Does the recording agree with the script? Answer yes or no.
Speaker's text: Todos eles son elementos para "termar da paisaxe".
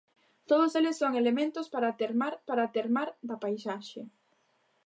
no